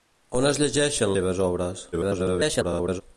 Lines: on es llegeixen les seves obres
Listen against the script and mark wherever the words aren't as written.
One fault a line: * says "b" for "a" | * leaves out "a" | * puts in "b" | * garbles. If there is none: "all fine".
* leaves out "les"
* garbles